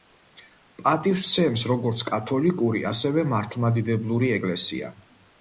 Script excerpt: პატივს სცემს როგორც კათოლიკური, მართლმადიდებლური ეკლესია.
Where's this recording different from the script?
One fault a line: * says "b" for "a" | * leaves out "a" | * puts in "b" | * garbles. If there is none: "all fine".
* puts in "ასევე"